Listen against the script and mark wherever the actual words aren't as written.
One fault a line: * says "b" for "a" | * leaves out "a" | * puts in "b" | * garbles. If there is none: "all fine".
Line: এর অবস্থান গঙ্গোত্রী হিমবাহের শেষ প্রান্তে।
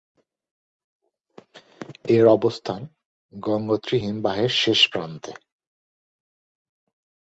all fine